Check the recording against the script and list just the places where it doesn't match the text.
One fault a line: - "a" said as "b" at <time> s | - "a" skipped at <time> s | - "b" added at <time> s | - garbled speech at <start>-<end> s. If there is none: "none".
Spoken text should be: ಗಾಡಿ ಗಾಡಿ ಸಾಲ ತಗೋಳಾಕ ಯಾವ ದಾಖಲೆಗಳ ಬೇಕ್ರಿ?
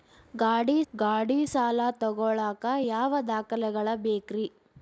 none